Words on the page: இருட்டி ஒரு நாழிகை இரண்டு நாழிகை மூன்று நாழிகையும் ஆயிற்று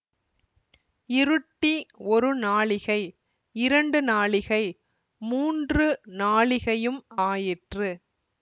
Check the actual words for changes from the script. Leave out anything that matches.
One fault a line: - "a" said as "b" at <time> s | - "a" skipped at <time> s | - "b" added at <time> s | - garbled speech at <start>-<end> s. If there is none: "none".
none